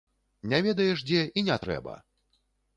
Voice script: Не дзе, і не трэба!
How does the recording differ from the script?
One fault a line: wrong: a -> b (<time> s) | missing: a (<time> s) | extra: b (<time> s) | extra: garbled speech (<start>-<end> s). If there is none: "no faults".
extra: ведаеш (0.7 s)